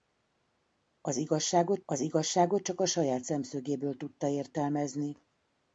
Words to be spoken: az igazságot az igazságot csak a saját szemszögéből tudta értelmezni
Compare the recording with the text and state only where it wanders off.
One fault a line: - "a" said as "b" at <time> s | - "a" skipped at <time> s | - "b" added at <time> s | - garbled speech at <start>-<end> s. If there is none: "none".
none